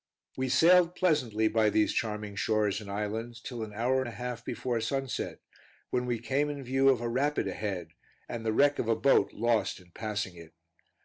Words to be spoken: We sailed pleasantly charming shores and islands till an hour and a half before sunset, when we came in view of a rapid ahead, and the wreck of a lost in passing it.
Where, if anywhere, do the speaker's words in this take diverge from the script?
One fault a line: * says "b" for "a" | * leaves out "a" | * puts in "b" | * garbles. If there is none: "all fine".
* puts in "by these"
* puts in "boat"